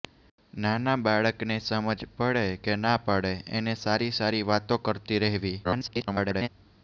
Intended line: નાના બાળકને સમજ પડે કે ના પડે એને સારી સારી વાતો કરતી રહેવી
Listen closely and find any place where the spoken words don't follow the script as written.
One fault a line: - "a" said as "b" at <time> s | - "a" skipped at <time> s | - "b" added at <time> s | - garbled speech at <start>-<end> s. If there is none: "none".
- garbled speech at 5.6-6.5 s